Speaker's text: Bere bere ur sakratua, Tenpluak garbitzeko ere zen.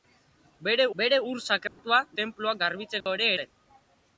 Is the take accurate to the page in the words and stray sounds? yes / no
no